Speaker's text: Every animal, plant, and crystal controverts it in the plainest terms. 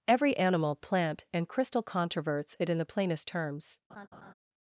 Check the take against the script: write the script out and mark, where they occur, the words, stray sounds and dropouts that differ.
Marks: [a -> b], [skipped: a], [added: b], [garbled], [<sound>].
Every animal, plant, and crystal controverts it in the plainest terms. [laugh]